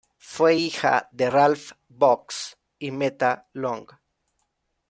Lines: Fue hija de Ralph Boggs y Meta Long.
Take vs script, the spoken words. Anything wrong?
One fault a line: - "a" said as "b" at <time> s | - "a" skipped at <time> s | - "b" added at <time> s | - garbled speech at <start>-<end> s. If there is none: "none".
none